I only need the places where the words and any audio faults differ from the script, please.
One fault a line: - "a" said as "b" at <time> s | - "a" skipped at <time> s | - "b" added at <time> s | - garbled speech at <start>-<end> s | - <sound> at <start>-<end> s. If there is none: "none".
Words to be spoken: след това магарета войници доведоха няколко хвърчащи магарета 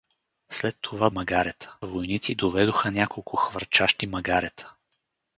none